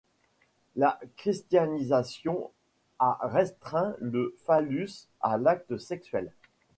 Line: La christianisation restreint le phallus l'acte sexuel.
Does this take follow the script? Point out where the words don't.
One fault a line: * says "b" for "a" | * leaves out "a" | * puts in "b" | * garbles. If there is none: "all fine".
* puts in "a"
* puts in "à"